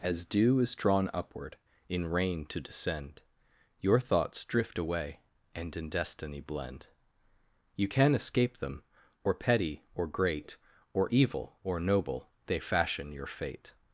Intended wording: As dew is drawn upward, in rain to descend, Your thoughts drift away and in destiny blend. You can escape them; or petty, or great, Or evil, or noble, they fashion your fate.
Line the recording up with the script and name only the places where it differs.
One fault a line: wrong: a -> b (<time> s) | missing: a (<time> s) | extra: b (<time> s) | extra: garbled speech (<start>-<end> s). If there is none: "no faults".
no faults